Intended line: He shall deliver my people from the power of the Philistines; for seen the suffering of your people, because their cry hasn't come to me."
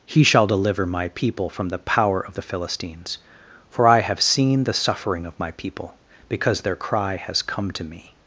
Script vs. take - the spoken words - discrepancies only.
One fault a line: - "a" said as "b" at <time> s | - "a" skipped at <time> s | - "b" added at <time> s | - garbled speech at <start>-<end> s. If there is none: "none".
- "I have" added at 3.9 s
- "your" said as "my" at 5.4 s
- "hasn't" said as "has" at 7.2 s